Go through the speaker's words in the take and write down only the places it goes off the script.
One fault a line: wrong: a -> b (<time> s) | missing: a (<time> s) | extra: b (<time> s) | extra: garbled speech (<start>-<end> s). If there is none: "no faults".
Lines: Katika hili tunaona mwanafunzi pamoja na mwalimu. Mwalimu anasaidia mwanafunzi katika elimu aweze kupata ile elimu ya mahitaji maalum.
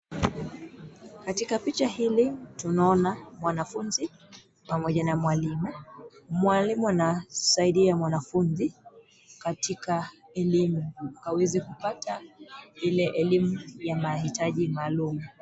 extra: picha (1.6 s)